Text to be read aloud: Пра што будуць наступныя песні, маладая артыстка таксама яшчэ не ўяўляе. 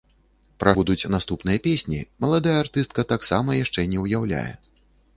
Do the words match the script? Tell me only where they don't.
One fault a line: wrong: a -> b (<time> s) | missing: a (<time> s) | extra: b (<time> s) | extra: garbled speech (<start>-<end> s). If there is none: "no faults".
missing: што (0.7 s)